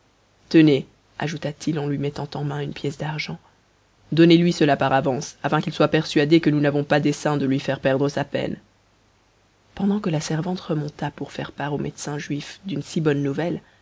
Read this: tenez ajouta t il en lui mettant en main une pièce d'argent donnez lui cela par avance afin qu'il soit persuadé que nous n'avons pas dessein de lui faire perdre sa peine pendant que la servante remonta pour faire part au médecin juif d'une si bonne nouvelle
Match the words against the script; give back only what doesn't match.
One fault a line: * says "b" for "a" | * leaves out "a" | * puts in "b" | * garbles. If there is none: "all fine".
all fine